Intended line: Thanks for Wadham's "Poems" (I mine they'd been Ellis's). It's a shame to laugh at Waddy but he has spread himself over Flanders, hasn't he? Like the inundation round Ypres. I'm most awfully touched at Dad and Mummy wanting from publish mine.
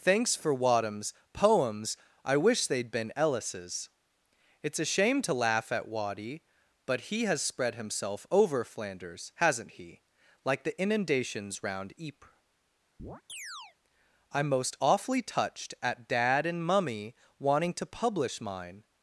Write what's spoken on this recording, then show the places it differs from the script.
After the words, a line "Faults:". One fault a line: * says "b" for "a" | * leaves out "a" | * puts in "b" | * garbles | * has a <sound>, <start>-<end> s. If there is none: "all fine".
Thanks for Wadham's "Poems" (I wish they'd been Ellis's). It's a shame to laugh at Waddy but he has spread himself over Flanders, hasn't he? Like the inundations round Ypres. I'm most awfully touched at Dad and Mummy wanting to publish mine.
Faults:
* says "wish" for "mine"
* says "inundations" for "inundation"
* has a chirp, 13.0-13.8 s
* says "to" for "from"